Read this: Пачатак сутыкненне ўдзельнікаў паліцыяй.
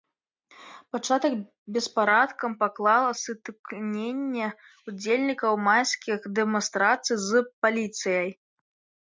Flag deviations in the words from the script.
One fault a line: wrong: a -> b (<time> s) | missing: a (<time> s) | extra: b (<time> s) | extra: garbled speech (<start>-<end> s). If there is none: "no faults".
extra: беспарадкам паклала (1.8 s)
extra: майскіх дэманстрацый з (5.7 s)